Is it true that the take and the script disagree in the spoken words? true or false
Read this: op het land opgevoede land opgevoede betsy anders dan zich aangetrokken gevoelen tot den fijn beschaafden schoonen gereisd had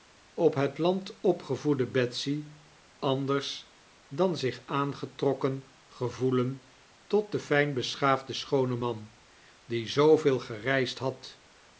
true